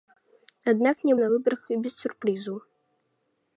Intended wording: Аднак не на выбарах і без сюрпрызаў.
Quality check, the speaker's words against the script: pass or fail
pass